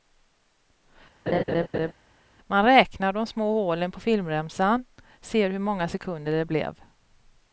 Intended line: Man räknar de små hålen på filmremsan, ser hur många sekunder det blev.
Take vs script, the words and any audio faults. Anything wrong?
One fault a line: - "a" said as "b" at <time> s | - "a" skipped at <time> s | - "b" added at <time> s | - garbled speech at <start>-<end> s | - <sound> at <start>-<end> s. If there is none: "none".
- laugh at 1.3-1.9 s